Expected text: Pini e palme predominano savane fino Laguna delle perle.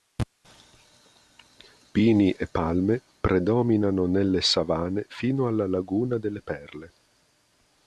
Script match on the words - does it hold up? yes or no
no